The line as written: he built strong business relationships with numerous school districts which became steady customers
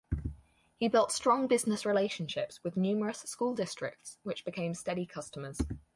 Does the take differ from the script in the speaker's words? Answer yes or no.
no